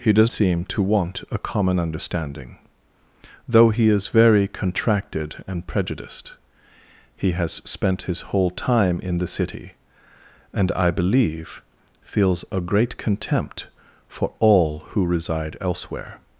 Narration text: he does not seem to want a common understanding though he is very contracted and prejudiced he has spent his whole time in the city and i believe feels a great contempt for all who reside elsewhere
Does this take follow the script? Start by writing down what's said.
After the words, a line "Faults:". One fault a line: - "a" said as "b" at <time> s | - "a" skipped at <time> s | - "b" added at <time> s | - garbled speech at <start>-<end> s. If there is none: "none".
he does seem to want a common understanding though he is very contracted and prejudiced he has spent his whole time in the city and i believe feels a great contempt for all who reside elsewhere
Faults:
- "not" skipped at 0.3 s